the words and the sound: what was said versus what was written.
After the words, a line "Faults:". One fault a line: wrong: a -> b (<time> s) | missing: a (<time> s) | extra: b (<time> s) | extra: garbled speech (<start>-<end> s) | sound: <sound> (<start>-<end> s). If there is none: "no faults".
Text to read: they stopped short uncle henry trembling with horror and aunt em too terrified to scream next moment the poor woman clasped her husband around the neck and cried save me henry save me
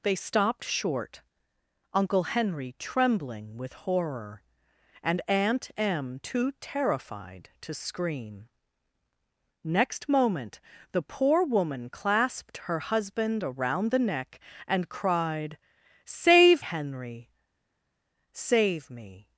they stopped short uncle henry trembling with horror and aunt em too terrified to scream next moment the poor woman clasped her husband around the neck and cried save henry save me
Faults:
missing: me (16.6 s)